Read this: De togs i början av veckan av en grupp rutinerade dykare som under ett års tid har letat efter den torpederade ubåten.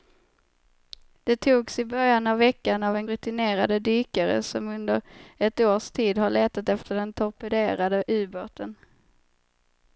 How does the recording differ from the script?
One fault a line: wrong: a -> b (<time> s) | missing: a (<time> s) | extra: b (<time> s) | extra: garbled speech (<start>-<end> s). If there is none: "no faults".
missing: grupp (3.1 s)